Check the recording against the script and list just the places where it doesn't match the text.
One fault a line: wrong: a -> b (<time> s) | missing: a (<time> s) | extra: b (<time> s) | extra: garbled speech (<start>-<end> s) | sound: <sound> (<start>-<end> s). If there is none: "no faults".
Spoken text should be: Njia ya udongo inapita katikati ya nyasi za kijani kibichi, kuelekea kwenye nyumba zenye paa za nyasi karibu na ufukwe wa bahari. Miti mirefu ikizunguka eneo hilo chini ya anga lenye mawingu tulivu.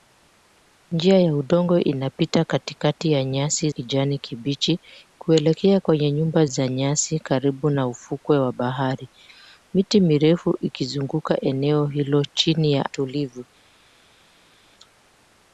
missing: za (3.7 s)
missing: zenye paa (6.5 s)
missing: anga lenye mawingu (12.9 s)